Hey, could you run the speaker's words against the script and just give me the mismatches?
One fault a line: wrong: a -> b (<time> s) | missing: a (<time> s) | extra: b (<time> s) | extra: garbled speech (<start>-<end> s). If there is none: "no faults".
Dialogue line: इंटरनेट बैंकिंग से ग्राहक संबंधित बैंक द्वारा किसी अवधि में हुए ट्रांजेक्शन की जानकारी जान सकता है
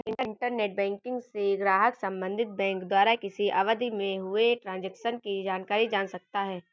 no faults